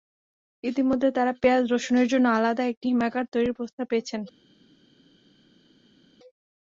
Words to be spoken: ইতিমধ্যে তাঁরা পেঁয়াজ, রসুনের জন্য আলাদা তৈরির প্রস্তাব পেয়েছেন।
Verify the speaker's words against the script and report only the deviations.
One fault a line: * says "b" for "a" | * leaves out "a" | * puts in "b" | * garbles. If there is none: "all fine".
* puts in "একটি হিমাগার"